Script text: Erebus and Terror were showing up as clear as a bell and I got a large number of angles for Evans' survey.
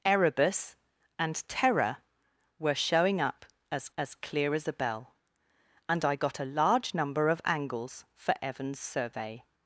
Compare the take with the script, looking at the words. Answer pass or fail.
fail